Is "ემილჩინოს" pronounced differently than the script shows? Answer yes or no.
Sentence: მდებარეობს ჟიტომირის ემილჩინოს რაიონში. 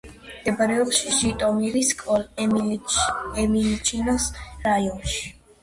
no